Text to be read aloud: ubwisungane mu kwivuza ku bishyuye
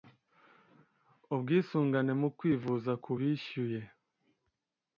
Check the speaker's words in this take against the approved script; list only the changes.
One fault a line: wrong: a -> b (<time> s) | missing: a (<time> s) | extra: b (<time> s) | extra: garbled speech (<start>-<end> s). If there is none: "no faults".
no faults